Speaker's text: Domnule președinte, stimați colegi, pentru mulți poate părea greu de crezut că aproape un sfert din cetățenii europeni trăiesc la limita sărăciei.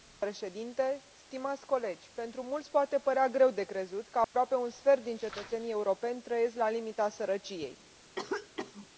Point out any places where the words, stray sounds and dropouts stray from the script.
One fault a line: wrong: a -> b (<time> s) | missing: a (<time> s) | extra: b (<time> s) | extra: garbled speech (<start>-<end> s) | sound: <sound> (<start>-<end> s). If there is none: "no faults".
sound: dropout (4.2-4.3 s)
sound: cough (8.1-8.9 s)